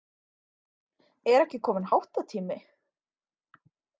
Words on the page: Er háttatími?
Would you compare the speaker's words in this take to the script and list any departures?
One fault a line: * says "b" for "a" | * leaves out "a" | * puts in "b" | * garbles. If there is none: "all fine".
* puts in "ekki kominn"